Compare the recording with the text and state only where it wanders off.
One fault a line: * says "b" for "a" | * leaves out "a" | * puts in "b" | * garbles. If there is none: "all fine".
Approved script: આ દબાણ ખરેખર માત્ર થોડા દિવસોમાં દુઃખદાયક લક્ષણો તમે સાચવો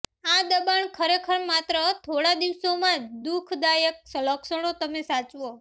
all fine